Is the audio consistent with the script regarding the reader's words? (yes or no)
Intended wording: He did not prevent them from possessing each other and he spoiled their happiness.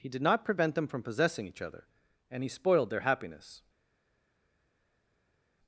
yes